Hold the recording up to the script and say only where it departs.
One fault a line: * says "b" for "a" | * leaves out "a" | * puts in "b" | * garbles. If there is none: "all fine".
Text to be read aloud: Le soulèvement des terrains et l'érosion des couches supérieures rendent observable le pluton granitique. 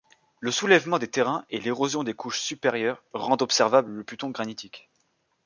all fine